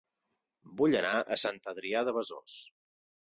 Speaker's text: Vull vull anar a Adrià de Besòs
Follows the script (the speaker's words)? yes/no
no